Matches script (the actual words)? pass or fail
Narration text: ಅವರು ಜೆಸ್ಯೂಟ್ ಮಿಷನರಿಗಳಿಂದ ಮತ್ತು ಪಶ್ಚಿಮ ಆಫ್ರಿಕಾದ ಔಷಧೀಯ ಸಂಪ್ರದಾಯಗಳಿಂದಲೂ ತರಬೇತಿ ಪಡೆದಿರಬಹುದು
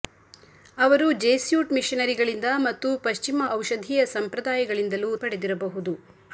fail